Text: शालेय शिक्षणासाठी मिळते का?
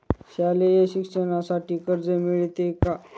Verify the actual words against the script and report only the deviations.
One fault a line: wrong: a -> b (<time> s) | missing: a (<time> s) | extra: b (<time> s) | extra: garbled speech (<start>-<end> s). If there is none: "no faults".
extra: कर्ज (1.8 s)